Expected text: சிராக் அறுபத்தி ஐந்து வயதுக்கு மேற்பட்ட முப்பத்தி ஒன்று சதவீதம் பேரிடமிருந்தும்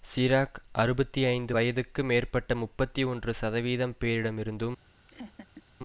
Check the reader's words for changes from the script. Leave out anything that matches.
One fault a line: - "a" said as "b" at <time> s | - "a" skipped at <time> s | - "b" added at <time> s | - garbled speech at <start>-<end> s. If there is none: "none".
none